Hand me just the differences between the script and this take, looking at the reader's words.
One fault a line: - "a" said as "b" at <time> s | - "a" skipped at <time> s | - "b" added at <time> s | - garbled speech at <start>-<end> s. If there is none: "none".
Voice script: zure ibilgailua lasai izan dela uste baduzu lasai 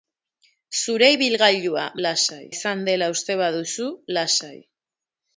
none